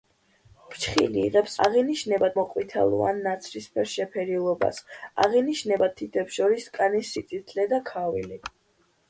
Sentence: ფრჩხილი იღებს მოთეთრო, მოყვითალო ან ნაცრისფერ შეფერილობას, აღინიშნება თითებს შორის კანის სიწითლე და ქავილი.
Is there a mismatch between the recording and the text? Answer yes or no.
yes